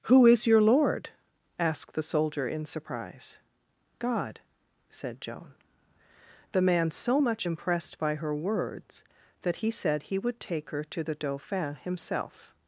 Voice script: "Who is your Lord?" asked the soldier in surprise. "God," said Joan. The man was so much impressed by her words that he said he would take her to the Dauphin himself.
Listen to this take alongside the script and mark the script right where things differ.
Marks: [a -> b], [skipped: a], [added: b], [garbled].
"Who is your Lord?" asked the soldier in surprise. "God," said Joan. The man [skipped: was] so much impressed by her words that he said he would take her to the Dauphin himself.